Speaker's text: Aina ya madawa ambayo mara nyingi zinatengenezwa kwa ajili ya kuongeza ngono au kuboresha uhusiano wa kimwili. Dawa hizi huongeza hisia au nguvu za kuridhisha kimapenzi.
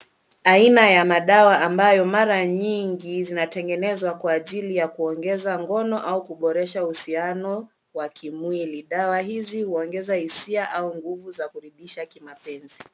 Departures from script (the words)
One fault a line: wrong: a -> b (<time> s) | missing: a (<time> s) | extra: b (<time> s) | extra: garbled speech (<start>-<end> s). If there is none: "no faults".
no faults